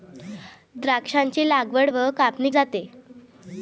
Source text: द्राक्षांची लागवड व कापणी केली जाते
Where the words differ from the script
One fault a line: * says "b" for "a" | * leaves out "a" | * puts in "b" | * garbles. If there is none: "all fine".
* leaves out "केली"